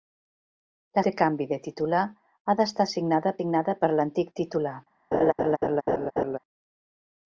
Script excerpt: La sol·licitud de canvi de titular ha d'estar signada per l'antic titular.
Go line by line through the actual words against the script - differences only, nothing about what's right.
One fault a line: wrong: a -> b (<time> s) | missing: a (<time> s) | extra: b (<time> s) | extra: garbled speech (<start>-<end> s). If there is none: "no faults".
missing: sol·licitud (1.0 s)
extra: signada (3.4 s)